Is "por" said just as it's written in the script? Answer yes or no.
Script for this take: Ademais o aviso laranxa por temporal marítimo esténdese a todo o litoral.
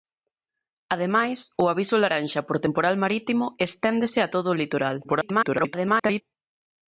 yes